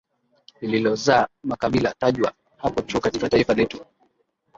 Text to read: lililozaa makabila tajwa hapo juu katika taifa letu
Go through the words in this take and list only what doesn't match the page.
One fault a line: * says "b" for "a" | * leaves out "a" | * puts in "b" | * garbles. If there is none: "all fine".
all fine